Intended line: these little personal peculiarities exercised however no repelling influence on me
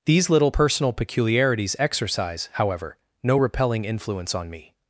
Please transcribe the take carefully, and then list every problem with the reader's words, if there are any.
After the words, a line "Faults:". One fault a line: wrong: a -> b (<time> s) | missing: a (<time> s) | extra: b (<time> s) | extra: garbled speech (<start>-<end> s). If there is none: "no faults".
these little personal peculiarities exercise however no repelling influence on me
Faults:
wrong: exercised -> exercise (1.8 s)